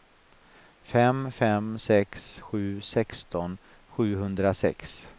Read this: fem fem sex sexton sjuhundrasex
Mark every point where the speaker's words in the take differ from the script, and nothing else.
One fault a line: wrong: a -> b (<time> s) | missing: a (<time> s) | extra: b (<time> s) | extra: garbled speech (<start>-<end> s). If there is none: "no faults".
extra: sju (2.4 s)